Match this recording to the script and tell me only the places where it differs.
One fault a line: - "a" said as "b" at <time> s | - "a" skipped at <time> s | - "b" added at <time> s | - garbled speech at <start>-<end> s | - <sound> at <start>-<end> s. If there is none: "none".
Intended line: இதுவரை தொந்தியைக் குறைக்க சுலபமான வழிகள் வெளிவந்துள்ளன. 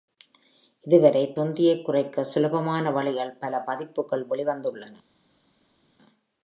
- "பல பதிப்புகள்" added at 3.4 s